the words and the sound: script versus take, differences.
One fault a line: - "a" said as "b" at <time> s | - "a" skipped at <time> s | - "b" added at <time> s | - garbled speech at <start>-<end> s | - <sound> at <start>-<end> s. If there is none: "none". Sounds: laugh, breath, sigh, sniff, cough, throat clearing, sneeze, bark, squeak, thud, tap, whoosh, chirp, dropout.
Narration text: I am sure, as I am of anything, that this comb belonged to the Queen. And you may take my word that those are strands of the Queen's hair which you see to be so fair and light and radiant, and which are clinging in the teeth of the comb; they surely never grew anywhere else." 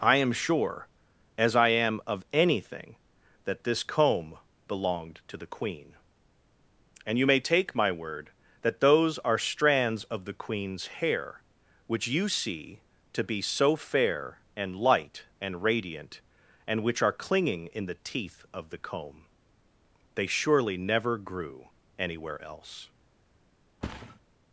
- thud at 23.8-24.2 s